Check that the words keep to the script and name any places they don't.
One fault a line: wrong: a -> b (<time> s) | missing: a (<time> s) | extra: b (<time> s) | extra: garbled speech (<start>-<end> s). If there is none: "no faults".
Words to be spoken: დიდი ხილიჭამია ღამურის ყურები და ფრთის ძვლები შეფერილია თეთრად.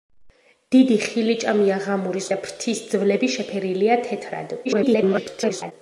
missing: ყურები (2.3 s)
extra: garbled speech (4.6-5.7 s)